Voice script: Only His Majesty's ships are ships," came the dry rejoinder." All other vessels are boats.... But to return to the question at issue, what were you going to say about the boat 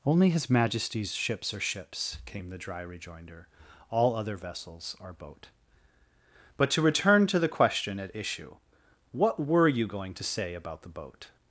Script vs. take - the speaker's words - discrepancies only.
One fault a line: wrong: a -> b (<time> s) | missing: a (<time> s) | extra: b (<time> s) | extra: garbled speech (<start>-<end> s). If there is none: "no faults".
wrong: boats -> boat (5.1 s)